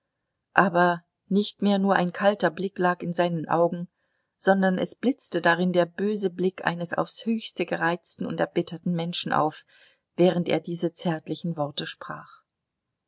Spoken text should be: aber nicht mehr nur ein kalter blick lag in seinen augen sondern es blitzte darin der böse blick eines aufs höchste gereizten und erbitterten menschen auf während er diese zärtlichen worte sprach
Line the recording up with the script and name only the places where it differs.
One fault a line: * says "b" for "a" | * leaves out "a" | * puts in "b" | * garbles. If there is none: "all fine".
all fine